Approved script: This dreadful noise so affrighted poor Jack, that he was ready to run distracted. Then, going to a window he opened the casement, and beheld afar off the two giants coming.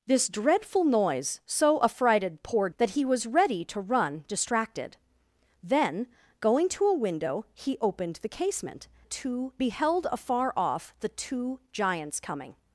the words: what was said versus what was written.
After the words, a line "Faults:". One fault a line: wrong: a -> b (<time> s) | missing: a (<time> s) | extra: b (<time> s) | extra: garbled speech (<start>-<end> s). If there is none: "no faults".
This dreadful noise so affrighted poor That he was ready to run distracted. Then, going to a window he opened the casement, two beheld afar off the two giants coming.
Faults:
missing: Jack (2.7 s)
wrong: and -> two (9.0 s)